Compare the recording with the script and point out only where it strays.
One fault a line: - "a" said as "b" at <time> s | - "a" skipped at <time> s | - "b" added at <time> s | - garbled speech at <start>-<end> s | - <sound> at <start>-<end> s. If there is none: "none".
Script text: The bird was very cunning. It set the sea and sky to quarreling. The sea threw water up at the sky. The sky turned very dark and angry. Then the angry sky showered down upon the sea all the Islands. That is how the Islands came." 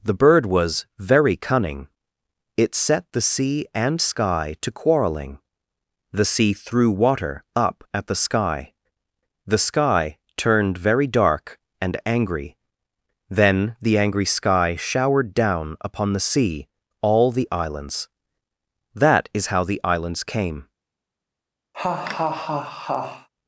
- laugh at 21.7-23.3 s